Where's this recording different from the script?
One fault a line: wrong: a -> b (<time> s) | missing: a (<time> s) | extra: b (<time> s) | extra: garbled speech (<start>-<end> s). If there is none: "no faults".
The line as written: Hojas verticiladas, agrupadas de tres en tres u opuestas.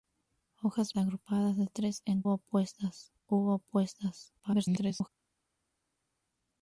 missing: verticiladas (0.9 s)
wrong: tres -> opuestas (2.3 s)
extra: garbled speech (4.4-5.1 s)